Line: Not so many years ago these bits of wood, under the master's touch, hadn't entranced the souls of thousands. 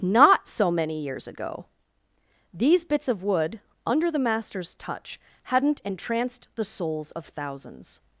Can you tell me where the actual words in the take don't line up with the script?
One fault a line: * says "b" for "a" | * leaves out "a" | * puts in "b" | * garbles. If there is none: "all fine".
all fine